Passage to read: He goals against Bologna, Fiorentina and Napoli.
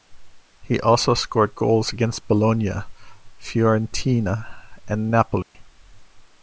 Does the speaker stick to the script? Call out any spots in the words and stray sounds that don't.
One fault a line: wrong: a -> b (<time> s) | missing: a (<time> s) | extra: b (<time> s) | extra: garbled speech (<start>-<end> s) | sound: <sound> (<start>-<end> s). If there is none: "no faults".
extra: also scored (0.8 s)
sound: dropout (5.4-5.5 s)